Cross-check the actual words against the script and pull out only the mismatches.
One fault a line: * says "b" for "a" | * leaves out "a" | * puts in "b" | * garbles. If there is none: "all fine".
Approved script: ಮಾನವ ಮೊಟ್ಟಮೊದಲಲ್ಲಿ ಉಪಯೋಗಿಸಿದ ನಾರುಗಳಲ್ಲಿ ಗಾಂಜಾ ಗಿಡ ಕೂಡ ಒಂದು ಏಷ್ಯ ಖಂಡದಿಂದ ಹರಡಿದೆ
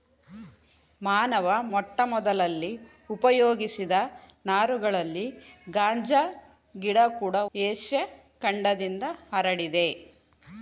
* leaves out "ಒಂದು"